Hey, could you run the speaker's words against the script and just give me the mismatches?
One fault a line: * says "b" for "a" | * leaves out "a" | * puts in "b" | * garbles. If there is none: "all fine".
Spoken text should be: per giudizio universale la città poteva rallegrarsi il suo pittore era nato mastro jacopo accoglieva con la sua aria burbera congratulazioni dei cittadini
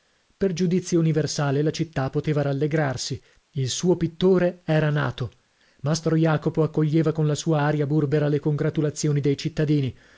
* puts in "le"